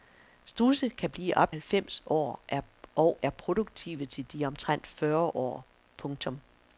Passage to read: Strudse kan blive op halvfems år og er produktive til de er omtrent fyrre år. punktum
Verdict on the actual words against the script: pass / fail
pass